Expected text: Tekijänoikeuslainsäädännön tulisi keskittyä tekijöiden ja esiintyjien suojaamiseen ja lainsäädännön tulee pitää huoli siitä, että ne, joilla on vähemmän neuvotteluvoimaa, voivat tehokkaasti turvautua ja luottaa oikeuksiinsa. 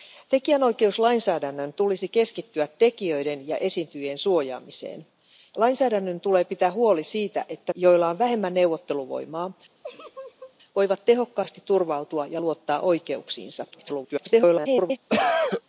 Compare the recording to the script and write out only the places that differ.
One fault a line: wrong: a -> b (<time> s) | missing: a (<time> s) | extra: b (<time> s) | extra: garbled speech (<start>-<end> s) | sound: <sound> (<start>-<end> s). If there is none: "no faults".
missing: ja (5.0 s)
missing: ne (7.7 s)
sound: laugh (9.8-10.6 s)
extra: garbled speech (13.7-15.0 s)
sound: cough (15.1-15.6 s)